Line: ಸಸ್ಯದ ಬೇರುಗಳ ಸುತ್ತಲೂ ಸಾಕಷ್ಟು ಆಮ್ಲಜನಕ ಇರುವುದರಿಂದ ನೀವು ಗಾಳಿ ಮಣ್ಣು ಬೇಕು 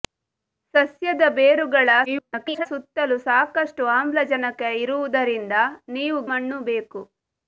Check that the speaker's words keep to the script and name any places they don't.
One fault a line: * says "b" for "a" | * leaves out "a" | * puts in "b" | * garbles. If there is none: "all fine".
* garbles
* leaves out "ಗಾಳಿ"